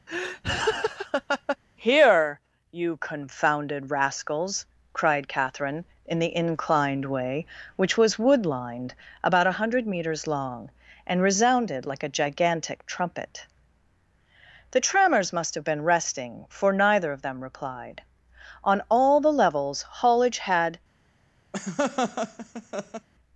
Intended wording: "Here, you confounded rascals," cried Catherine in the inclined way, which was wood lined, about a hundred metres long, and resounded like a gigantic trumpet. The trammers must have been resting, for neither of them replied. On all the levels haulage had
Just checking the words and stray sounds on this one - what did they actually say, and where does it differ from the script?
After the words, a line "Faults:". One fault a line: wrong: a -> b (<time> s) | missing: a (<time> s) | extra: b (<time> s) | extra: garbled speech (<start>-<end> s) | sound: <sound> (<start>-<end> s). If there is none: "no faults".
"Here, you confounded rascals," cried Catherine in the inclined way, which was wood lined, about a hundred metres long, and resounded like a gigantic trumpet. The trammers must have been resting, for neither of them replied. On all the levels haulage had
Faults:
sound: laugh (0.1-1.6 s)
sound: laugh (21.5-23.1 s)